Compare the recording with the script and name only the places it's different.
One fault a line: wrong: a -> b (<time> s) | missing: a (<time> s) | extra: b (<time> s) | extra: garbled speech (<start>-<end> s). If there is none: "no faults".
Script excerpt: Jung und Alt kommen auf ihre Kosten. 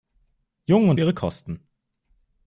missing: Alt kommen auf (1.0 s)